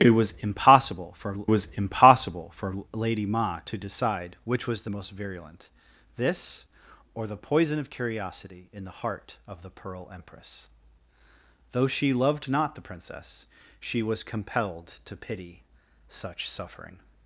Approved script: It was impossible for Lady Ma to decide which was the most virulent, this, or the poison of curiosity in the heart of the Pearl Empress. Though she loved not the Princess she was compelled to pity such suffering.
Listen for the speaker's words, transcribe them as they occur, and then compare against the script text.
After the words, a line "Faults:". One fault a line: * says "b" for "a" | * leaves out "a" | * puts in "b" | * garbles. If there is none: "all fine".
It was impossible for was impossible for Lady Ma to decide which was the most virulent, this, or the poison of curiosity in the heart of the Pearl Empress. Though she loved not the Princess she was compelled to pity such suffering.
Faults:
* puts in "was impossible for"